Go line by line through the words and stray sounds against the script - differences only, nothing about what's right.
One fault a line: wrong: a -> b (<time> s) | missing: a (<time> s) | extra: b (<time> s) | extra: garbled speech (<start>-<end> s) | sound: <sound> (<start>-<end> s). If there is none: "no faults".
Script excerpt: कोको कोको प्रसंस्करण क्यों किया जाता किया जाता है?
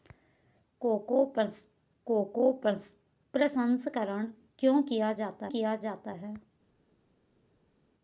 no faults